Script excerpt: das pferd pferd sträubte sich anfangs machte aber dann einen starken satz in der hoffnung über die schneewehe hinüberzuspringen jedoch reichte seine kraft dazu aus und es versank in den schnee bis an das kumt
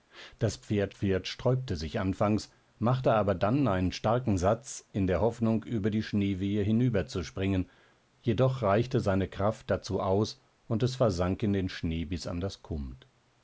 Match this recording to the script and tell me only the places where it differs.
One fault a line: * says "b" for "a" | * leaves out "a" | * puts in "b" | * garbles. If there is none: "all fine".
all fine